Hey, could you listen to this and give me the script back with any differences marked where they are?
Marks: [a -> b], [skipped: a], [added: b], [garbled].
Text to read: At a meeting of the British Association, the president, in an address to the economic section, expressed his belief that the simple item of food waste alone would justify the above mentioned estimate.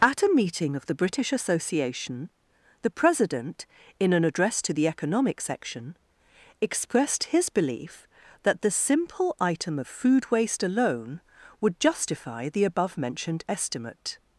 At a meeting of the British Association, the president, in an address to the economic section, expressed his belief that the simple item of food waste alone would justify the above mentioned estimate.